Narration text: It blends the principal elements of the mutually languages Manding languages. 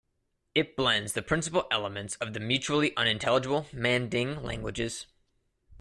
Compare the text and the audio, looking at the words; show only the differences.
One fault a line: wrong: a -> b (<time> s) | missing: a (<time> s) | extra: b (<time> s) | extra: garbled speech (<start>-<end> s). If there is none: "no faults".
wrong: languages -> unintelligible (3.0 s)